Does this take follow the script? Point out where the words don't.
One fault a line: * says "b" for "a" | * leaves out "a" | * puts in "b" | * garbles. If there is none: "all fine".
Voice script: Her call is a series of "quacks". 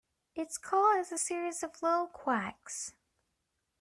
* says "Its" for "Her"
* puts in "low"